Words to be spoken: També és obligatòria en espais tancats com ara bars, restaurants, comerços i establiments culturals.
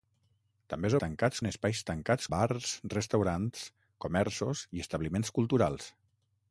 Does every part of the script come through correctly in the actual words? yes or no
no